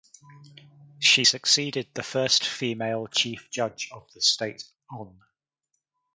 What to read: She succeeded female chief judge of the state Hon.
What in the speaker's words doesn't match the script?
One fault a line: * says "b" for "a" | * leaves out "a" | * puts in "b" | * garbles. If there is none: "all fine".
* puts in "the first"